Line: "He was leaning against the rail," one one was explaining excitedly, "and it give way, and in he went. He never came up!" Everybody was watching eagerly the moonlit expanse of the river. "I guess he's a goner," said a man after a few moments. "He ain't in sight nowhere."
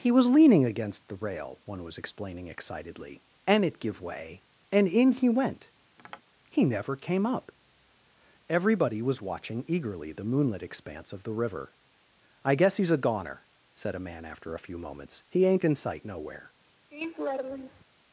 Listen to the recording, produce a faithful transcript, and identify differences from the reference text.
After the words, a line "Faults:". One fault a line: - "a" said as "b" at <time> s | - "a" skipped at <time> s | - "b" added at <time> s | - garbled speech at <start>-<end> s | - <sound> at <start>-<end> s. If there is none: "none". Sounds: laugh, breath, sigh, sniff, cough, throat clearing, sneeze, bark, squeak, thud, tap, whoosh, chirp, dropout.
"He was leaning against the rail," one was explaining excitedly, "and it give way, and in he went. He never came up!" Everybody was watching eagerly the moonlit expanse of the river. "I guess he's a goner," said a man after a few moments. "He ain't in sight nowhere."
Faults:
- "one" skipped at 1.8 s
- tap at 6.0-6.2 s
- laugh at 16.9-17.8 s